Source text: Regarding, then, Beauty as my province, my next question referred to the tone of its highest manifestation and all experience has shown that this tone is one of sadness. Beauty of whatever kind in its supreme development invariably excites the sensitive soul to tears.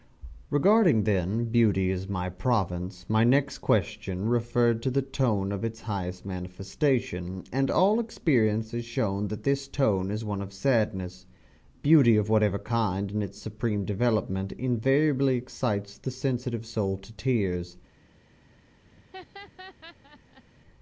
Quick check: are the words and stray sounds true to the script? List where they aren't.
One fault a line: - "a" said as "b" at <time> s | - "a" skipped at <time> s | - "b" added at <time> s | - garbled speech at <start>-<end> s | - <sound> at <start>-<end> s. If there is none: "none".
- laugh at 18.9-20.4 s